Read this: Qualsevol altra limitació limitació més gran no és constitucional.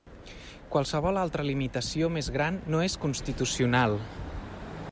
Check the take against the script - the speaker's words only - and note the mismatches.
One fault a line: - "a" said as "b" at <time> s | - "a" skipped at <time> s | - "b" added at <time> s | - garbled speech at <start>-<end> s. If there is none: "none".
- "limitació" skipped at 2.1 s